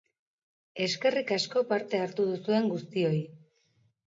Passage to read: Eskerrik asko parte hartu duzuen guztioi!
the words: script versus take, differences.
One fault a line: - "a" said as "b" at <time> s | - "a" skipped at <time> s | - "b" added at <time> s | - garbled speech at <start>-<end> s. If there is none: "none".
none